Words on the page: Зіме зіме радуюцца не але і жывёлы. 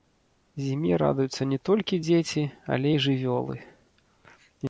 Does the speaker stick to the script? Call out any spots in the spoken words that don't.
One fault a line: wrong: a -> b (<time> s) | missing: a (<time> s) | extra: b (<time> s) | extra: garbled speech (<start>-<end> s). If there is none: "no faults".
missing: зіме (0.9 s)
extra: толькі дзеці (1.7 s)